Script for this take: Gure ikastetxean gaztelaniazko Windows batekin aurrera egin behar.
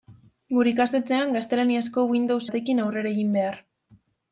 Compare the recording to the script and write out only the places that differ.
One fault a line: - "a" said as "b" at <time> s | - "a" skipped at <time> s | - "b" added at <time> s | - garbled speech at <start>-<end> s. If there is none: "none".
none